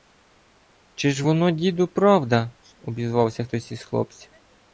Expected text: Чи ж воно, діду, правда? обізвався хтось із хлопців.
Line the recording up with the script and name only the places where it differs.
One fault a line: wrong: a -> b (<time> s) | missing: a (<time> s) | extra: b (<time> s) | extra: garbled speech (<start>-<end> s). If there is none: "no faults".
no faults